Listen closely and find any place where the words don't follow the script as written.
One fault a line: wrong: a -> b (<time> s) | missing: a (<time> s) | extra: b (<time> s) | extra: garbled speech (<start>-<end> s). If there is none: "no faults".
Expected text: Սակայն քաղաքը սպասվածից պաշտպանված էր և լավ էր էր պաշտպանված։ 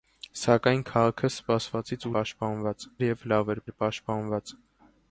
no faults